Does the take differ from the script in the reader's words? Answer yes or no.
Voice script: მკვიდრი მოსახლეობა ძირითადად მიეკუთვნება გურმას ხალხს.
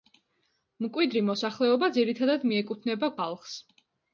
yes